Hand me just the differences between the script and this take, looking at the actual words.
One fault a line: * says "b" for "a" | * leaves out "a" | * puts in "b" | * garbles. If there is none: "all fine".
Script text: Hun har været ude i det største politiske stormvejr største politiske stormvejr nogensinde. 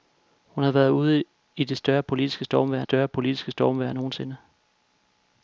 all fine